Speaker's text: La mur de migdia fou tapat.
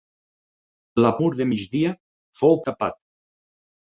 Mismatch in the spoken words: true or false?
false